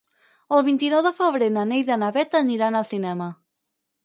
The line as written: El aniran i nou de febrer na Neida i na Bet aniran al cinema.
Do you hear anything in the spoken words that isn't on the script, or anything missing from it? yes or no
yes